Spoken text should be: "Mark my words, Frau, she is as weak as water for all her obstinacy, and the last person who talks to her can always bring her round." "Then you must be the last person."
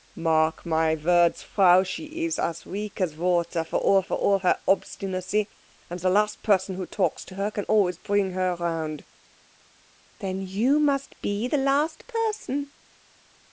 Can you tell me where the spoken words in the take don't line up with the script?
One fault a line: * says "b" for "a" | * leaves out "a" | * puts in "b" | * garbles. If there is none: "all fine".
* puts in "for all"